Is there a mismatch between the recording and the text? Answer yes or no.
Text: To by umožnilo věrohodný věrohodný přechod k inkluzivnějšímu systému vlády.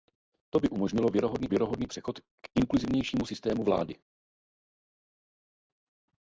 no